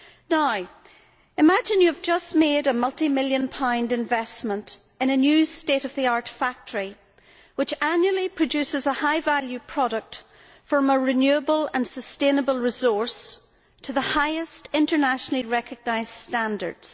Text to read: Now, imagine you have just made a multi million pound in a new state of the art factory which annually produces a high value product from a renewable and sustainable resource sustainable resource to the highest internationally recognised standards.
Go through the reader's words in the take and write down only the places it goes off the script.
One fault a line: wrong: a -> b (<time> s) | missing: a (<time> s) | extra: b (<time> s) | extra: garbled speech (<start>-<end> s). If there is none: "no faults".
extra: investment (3.9 s)
missing: sustainable resource (13.4 s)